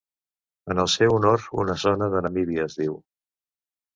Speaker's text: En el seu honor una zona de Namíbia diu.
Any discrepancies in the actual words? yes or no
yes